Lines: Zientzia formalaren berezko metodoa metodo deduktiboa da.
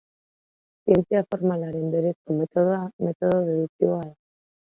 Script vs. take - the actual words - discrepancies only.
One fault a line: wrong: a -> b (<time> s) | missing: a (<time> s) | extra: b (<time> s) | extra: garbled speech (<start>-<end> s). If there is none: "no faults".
no faults